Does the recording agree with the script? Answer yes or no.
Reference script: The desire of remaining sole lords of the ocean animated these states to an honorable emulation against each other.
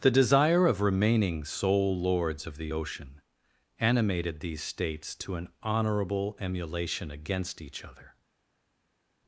yes